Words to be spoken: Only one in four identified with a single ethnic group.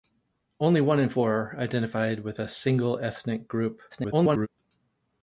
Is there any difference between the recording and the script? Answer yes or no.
yes